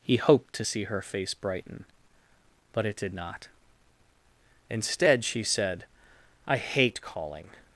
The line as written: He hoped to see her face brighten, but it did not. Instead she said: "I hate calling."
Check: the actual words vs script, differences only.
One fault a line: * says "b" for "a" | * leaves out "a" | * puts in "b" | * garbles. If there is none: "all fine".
all fine